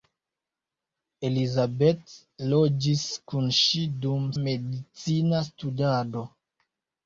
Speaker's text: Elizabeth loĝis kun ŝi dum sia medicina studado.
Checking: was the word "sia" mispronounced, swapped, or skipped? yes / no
yes